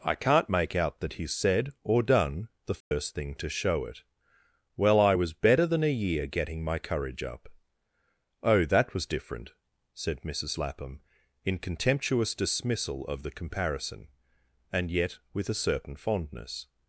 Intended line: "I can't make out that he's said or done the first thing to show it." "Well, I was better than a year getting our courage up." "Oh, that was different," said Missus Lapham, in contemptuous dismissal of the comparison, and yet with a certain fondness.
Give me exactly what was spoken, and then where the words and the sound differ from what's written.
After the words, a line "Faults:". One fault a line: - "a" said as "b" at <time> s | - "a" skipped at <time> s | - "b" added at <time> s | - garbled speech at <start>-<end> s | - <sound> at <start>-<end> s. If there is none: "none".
"I can't make out that he's said or done the first thing to show it." "Well, I was better than a year getting my courage up." "Oh, that was different," said Missus Lapham, in contemptuous dismissal of the comparison, and yet with a certain fondness.
Faults:
- dropout at 2.8-2.9 s
- "our" said as "my" at 6.6 s